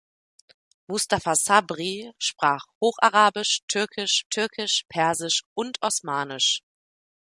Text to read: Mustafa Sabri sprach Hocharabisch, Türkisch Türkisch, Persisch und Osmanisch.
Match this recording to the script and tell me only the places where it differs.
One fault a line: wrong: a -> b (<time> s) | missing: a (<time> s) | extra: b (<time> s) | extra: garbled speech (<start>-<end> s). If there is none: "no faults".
no faults